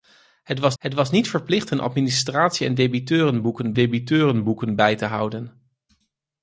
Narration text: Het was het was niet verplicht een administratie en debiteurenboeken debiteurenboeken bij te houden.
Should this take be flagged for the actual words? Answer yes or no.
no